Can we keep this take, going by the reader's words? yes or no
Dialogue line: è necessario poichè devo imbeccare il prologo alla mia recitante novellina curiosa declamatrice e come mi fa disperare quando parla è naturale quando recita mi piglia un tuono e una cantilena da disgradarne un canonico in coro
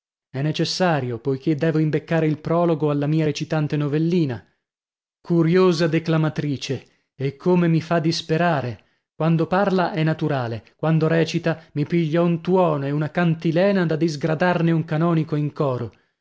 yes